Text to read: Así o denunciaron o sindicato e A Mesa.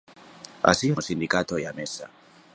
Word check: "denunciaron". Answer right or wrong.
wrong